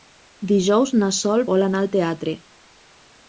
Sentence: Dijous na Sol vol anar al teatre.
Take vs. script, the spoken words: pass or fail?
pass